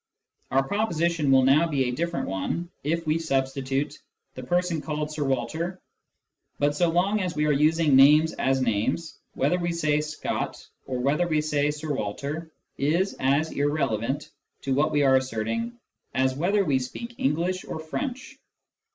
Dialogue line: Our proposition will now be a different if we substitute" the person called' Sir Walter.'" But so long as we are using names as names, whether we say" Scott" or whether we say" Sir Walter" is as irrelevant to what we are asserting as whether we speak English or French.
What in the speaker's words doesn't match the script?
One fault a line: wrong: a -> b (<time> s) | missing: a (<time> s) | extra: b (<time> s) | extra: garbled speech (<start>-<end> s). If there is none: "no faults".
extra: one (2.2 s)